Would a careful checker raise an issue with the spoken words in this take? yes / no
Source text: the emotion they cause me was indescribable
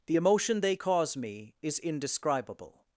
yes